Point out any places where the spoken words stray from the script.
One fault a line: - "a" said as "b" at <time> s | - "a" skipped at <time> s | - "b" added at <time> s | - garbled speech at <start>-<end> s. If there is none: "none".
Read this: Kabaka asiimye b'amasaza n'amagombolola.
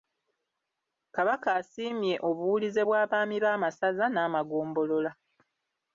- "obuwulize bw'abaami" added at 2.3 s